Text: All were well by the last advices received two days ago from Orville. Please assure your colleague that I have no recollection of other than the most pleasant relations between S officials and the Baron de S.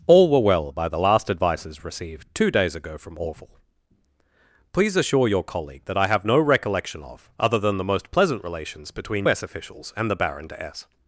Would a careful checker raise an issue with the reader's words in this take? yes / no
no